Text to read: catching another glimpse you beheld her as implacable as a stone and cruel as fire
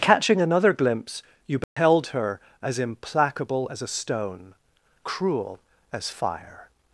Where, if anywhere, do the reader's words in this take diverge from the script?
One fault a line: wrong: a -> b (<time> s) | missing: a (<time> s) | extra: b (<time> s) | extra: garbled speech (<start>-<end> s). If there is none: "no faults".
missing: and (4.6 s)